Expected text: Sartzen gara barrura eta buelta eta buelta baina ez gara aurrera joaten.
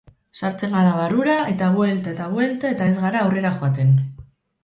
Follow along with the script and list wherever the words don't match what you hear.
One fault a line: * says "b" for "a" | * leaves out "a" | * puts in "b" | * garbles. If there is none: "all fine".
* says "eta" for "baina"